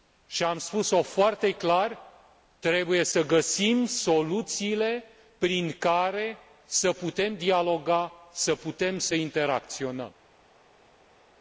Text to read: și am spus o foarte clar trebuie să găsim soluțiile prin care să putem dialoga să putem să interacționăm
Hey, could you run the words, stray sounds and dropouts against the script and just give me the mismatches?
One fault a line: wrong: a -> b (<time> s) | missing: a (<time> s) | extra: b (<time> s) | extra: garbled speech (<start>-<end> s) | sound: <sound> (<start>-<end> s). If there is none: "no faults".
no faults